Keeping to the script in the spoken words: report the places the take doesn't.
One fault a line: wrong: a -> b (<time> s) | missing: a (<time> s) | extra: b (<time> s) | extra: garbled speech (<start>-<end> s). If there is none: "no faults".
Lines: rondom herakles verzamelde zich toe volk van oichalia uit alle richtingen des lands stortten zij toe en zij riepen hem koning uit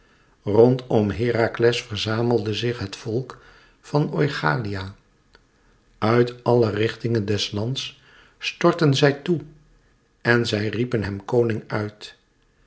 wrong: toe -> het (2.8 s)